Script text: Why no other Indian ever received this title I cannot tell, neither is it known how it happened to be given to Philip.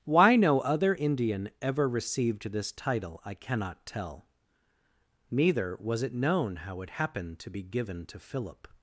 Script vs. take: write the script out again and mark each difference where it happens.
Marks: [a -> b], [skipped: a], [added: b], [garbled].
Why no other Indian ever received this title I cannot tell, neither [is -> was] it known how it happened to be given to Philip.